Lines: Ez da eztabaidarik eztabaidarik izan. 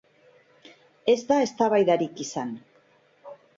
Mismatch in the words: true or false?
true